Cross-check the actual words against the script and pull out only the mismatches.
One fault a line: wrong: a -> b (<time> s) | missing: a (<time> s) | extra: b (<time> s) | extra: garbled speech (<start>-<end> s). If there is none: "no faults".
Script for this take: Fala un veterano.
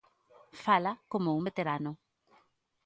extra: como (1.1 s)